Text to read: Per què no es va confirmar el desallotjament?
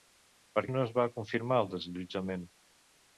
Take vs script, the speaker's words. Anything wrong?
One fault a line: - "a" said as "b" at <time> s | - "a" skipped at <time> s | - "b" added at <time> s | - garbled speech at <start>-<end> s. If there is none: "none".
- "què" skipped at 0.6 s